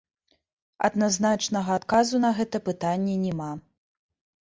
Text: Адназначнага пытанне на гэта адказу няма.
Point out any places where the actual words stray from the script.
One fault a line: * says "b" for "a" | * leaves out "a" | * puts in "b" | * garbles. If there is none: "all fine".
* says "адказу" for "пытанне"
* says "пытанне" for "адказу"